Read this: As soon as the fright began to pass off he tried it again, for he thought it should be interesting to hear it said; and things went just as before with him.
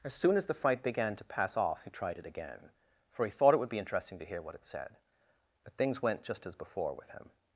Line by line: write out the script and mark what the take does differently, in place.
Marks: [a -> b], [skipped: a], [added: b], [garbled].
As soon as the fright began to pass off he tried it again, for he thought it [should -> would] be interesting to hear [added: what] it said; [and -> but] things went just as before with him.